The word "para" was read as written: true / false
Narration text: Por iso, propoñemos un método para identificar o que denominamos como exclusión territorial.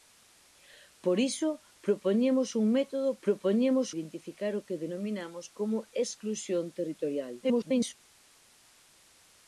false